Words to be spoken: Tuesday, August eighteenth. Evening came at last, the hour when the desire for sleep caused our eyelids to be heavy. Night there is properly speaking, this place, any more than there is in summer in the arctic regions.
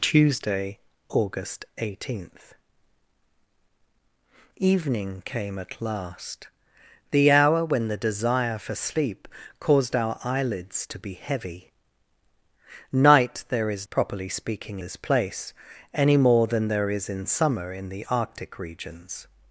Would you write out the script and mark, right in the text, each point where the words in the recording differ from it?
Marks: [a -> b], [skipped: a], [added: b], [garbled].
Tuesday, August eighteenth. Evening came at last, the hour when the desire for sleep caused our eyelids to be heavy. Night there is properly speaking, this place, any more than there is in summer in the arctic regions.